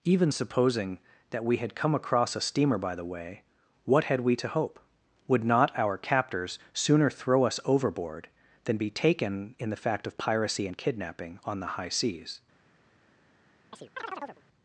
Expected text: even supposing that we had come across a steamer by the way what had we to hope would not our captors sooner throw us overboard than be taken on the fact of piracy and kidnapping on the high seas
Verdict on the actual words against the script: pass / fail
fail